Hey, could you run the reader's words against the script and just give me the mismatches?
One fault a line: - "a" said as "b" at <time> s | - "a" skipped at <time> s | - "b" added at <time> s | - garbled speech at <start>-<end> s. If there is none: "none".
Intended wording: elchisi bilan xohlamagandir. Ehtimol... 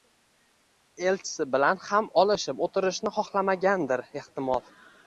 - "ham olishib o'tirishni" added at 1.9 s